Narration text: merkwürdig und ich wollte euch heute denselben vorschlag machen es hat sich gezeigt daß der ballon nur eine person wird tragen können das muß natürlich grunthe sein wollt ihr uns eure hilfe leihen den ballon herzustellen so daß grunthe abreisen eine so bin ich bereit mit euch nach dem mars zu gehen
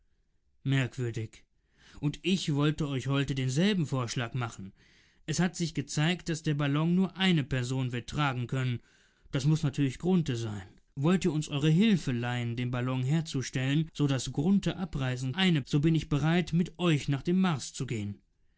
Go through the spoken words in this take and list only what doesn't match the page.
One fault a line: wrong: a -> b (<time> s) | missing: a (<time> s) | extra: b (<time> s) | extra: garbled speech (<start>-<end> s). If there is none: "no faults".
no faults